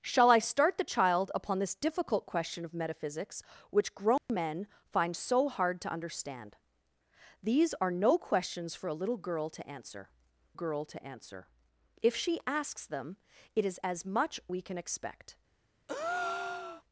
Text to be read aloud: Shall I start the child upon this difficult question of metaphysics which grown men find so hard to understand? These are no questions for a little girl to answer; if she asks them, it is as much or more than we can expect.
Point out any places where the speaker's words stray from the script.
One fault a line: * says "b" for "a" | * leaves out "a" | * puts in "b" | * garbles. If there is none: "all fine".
* puts in "girl to answer"
* leaves out "or more than"